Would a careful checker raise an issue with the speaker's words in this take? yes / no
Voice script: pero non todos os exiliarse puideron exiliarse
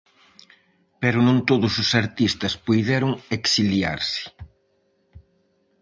yes